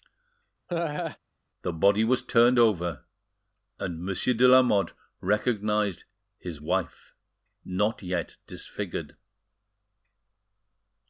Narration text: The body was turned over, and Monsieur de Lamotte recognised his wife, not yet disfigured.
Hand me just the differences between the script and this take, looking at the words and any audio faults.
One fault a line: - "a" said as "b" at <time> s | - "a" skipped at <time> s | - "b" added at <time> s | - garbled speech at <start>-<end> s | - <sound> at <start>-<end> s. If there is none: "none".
- laugh at 0.7-1.2 s